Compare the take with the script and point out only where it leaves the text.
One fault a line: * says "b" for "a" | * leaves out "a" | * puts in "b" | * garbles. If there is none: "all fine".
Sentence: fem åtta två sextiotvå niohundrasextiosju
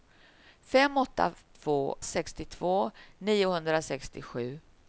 all fine